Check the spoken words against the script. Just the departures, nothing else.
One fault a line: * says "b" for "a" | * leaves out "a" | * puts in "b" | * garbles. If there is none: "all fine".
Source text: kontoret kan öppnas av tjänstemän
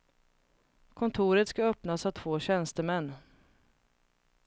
* says "ska" for "kan"
* puts in "två"